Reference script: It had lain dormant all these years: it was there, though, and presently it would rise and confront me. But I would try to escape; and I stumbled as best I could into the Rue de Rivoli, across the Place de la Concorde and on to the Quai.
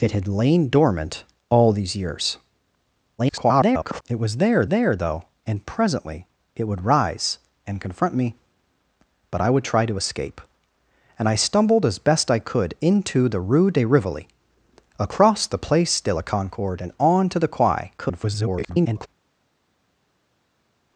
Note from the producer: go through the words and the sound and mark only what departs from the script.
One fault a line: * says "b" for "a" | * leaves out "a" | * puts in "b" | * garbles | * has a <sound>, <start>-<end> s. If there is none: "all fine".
* garbles
* puts in "there"
* garbles